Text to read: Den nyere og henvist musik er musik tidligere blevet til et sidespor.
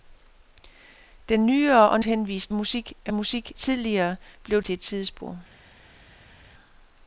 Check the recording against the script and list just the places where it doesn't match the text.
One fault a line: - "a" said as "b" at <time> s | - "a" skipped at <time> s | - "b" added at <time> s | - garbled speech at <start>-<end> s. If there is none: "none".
none